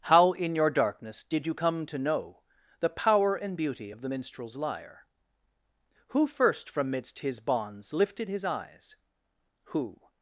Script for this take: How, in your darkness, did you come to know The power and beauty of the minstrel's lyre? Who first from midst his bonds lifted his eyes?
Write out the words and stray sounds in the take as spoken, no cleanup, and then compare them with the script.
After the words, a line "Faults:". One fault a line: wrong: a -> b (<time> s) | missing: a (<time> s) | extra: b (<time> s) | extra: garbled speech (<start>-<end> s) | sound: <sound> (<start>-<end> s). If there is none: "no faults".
How, in your darkness, did you come to know The power and beauty of the minstrel's lyre? Who first from midst his bonds lifted his eyes? Who
Faults:
extra: Who (9.6 s)